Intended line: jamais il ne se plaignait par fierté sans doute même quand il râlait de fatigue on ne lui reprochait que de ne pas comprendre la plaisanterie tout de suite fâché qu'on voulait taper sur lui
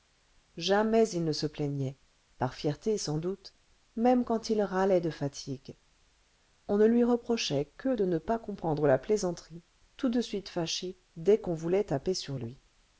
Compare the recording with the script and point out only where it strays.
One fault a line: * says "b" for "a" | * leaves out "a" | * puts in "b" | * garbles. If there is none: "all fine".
* puts in "dès"